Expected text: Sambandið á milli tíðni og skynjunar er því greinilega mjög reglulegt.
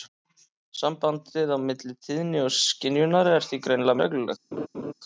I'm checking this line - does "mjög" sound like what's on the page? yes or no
no